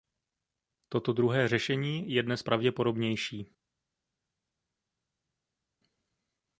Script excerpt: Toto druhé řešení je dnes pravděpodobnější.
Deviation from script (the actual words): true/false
false